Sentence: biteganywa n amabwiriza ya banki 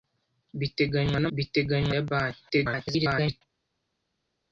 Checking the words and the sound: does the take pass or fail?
fail